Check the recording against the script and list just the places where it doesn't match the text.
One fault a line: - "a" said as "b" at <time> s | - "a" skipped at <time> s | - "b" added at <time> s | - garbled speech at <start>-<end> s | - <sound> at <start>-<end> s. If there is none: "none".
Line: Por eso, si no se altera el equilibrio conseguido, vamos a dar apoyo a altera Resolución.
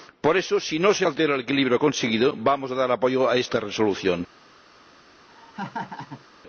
- "altera" said as "esta" at 3.4 s
- laugh at 5.3-6.3 s